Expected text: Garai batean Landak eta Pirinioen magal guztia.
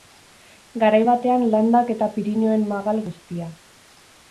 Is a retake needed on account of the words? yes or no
no